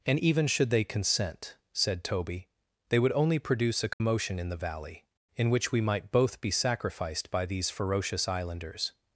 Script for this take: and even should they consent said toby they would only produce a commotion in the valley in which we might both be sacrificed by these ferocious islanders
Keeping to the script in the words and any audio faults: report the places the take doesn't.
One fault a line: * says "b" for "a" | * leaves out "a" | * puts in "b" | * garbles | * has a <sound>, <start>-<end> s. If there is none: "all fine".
* has a dropout, 3.9-4.0 s